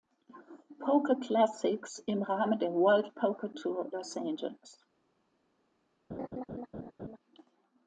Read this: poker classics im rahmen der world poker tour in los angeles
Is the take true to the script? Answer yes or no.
no